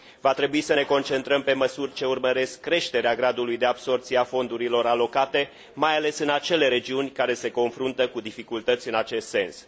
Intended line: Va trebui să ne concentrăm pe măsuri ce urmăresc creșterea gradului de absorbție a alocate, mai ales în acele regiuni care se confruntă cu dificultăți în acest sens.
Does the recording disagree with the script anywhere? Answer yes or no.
yes